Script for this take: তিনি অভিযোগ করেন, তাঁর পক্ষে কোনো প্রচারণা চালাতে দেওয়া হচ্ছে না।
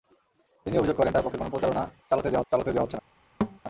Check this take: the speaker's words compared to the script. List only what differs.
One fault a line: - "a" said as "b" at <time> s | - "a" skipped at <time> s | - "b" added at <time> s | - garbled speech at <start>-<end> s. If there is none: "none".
- "চালাতে দেওয়া" added at 2.5 s